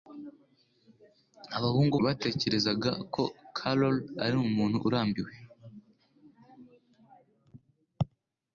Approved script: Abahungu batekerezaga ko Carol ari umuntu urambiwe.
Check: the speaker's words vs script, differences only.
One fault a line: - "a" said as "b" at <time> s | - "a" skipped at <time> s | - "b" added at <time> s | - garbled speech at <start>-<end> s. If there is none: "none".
none